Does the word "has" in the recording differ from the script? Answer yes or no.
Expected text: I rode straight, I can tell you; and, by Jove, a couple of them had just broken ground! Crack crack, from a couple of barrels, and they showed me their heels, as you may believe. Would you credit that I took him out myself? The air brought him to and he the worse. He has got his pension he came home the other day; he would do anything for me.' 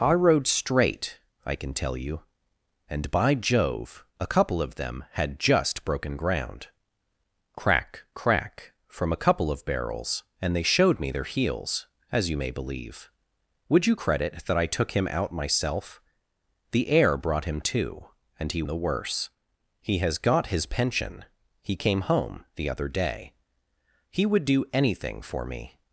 no